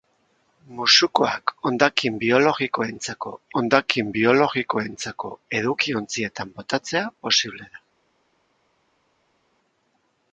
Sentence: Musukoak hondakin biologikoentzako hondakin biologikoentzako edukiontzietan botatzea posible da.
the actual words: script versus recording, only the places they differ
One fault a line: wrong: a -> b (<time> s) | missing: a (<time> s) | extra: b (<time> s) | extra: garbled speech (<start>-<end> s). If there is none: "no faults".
no faults